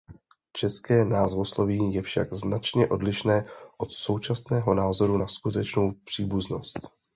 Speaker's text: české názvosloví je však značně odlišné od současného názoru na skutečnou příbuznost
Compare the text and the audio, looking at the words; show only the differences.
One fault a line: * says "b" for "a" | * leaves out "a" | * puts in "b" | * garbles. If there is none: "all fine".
all fine